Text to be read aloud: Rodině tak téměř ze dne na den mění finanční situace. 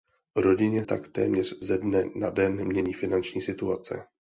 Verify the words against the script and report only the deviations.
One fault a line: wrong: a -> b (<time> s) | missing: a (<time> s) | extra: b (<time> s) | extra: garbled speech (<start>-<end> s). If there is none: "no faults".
no faults